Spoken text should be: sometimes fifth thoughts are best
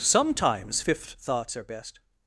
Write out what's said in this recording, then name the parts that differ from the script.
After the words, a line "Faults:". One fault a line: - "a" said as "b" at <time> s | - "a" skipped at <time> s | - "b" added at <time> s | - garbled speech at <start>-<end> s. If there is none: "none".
sometimes fifth thoughts are best
Faults:
none